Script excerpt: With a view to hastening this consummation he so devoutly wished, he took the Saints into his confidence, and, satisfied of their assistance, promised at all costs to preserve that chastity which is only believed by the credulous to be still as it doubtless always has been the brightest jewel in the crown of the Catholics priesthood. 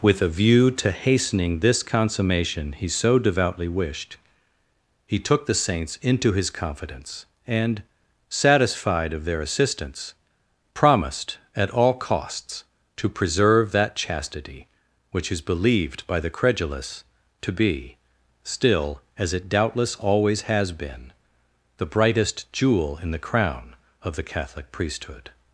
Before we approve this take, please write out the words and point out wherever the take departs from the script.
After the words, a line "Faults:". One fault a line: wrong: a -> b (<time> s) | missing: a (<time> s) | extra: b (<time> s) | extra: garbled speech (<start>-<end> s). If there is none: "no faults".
With a view to hastening this consummation he so devoutly wished, he took the Saints into his confidence, and, satisfied of their assistance, promised at all costs to preserve that chastity which is believed by the credulous to be still as it doubtless always has been the brightest jewel in the crown of the Catholic priesthood.
Faults:
missing: only (15.4 s)
wrong: Catholics -> Catholic (24.2 s)